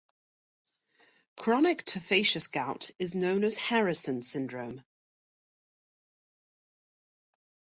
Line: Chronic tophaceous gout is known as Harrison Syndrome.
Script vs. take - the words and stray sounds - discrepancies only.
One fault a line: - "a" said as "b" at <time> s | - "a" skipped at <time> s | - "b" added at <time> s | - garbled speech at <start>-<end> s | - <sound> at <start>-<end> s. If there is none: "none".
none